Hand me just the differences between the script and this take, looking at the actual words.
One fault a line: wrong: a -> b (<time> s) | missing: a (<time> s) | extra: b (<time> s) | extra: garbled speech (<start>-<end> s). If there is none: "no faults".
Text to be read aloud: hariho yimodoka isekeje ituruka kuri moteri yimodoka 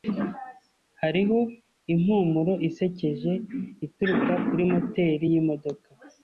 wrong: yimodoka -> impumuro (1.9 s)